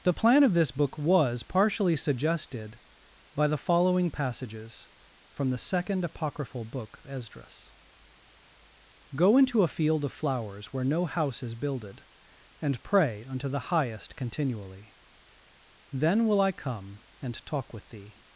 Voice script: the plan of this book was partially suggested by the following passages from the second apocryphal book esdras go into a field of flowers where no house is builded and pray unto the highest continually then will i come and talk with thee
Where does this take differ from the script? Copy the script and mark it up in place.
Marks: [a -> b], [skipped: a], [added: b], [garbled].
the plan of this book was partially suggested by the following passages from the second apocryphal book esdras go into a field of flowers where no house is builded and pray unto the highest continually then will i come and talk with thee